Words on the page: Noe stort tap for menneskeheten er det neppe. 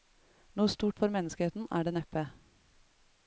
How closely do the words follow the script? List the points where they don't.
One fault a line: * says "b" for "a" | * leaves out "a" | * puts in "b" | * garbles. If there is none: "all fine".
* leaves out "tap"